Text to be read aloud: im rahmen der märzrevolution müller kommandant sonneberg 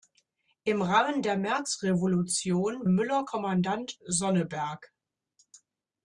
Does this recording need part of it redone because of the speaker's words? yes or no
no